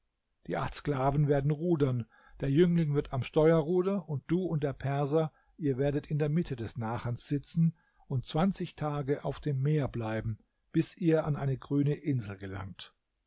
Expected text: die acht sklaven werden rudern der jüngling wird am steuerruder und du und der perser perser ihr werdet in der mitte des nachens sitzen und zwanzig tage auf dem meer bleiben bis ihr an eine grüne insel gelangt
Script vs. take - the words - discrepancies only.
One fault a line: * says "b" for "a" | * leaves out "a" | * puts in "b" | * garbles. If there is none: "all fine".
* leaves out "perser"